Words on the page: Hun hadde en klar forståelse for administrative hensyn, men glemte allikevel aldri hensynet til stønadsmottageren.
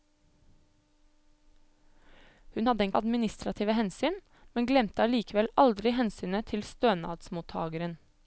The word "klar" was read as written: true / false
false